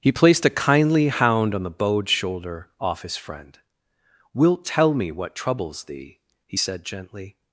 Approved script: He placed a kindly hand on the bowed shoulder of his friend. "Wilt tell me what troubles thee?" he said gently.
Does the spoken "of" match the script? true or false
false